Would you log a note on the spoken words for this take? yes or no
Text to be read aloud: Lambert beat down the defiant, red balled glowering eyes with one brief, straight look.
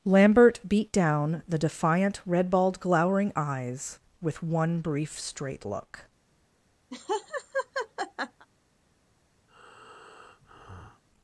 no